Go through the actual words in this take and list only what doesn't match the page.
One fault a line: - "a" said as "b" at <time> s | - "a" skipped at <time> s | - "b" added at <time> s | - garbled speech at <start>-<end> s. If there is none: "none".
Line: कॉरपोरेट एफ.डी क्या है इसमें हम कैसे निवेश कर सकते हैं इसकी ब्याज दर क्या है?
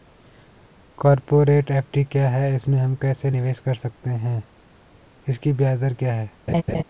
none